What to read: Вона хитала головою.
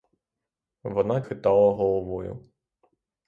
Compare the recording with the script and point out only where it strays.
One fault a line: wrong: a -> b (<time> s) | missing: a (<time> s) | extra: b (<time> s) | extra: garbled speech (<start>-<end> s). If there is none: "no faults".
no faults